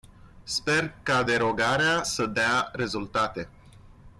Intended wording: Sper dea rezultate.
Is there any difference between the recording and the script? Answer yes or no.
yes